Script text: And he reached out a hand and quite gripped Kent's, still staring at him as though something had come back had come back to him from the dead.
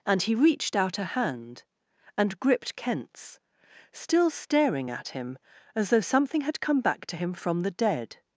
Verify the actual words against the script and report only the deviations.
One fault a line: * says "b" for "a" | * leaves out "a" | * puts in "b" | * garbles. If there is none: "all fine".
* leaves out "quite"
* leaves out "had come back"